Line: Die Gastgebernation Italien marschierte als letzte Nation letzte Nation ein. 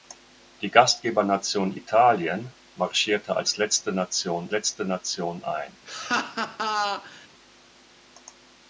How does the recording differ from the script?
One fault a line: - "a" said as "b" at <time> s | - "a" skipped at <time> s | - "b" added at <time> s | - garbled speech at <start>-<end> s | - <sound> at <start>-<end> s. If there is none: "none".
- laugh at 5.9-7.3 s